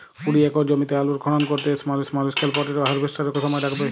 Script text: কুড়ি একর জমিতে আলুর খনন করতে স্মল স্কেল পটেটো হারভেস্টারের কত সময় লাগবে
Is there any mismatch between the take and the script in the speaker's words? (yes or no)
yes